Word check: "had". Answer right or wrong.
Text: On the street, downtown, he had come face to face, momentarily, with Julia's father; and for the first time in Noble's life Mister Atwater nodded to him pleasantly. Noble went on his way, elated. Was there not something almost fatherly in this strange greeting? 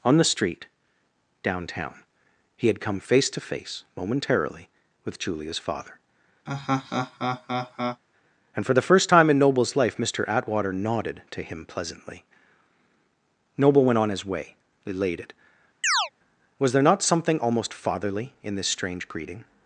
right